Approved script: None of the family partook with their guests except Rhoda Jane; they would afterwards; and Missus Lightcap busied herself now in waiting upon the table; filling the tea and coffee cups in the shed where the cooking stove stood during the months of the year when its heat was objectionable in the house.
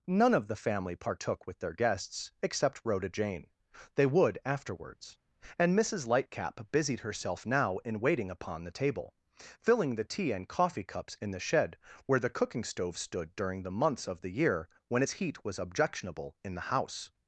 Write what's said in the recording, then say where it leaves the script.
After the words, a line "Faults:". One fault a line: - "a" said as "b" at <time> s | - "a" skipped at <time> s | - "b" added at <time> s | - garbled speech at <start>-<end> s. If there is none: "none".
None of the family partook with their guests except Rhoda Jane; they would afterwards; and Missus Lightcap busied herself now in waiting upon the table; filling the tea and coffee cups in the shed where the cooking stove stood during the months of the year when its heat was objectionable in the house.
Faults:
none